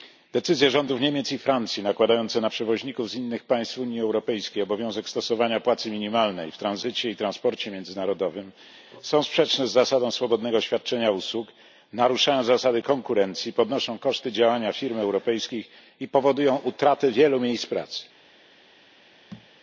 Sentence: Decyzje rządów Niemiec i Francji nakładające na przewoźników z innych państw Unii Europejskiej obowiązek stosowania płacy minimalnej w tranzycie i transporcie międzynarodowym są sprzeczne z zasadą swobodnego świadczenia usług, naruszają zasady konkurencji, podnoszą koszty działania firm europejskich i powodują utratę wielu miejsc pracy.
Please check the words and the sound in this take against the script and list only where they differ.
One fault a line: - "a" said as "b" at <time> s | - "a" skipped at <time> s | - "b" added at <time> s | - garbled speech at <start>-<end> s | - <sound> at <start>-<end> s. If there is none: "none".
- thud at 19.3-19.5 s